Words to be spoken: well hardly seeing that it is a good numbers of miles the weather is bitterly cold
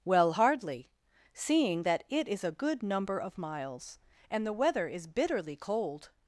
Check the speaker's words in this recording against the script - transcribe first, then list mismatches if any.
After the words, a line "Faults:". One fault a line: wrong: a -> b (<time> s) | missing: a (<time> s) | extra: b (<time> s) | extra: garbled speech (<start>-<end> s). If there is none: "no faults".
well hardly seeing that it is a good number of miles and the weather is bitterly cold
Faults:
wrong: numbers -> number (2.8 s)
extra: and (4.3 s)